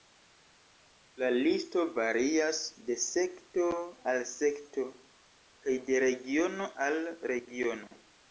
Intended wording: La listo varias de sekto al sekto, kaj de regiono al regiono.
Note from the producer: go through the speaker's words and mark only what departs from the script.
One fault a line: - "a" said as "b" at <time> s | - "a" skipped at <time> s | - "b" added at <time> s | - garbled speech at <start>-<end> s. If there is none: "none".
none